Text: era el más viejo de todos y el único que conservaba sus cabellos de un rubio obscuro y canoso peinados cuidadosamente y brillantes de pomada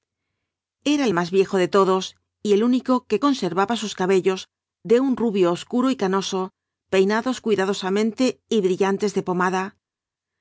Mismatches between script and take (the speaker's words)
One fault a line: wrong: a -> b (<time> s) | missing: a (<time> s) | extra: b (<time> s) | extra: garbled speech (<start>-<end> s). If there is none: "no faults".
no faults